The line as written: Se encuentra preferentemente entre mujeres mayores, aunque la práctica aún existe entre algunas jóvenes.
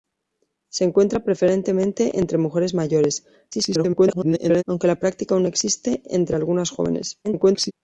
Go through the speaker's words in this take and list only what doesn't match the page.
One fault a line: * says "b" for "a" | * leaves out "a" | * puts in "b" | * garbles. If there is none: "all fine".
* garbles
* garbles